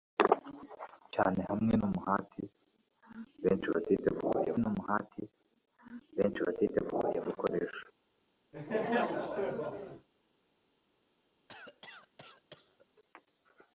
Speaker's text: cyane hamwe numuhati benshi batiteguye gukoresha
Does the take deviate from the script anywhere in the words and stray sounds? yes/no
yes